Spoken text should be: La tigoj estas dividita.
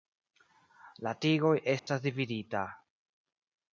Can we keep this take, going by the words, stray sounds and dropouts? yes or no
no